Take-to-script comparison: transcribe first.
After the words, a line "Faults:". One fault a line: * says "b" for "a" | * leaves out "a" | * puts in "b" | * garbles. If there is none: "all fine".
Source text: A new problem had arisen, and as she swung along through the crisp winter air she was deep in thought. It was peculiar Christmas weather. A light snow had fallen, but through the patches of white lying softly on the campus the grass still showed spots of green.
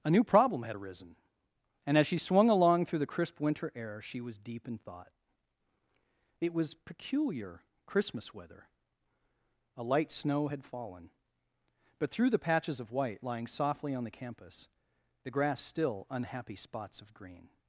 A new problem had arisen, and as she swung along through the crisp winter air she was deep in thought. It was peculiar Christmas weather. A light snow had fallen, but through the patches of white lying softly on the campus the grass still unhappy spots of green.
Faults:
* says "unhappy" for "showed"